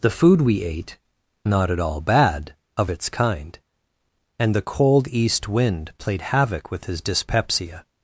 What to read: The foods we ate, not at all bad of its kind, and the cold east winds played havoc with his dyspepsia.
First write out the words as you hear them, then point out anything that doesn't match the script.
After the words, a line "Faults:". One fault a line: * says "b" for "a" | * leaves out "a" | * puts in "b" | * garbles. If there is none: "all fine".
The food we ate, not at all bad of its kind, and the cold east wind played havoc with his dyspepsia.
Faults:
* says "food" for "foods"
* says "wind" for "winds"